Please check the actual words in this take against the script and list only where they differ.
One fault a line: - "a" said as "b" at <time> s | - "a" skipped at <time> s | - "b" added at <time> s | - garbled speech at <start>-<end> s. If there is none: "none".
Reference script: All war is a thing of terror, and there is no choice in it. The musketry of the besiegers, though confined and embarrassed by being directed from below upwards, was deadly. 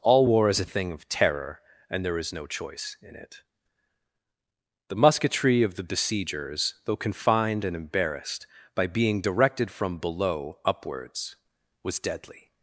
none